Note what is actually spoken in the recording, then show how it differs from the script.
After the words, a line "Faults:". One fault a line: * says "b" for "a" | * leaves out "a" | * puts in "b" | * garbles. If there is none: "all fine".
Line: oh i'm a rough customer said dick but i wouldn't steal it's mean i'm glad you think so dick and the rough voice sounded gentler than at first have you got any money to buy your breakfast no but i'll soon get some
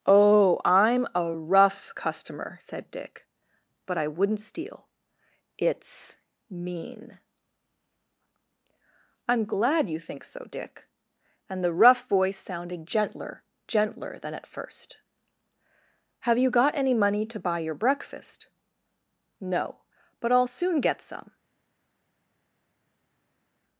oh i'm a rough customer said dick but i wouldn't steal it's mean i'm glad you think so dick and the rough voice sounded gentler gentler than at first have you got any money to buy your breakfast no but i'll soon get some
Faults:
* puts in "gentler"